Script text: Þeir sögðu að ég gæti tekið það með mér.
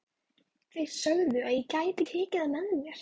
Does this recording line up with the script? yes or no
yes